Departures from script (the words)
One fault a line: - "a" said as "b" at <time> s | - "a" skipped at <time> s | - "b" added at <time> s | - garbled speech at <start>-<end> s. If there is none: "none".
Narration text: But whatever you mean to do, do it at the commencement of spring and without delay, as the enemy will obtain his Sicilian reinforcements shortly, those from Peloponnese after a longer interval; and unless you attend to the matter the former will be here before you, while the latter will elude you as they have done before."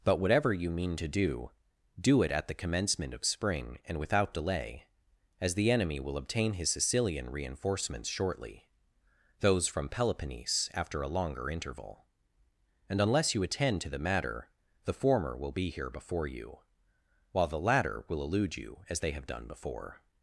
none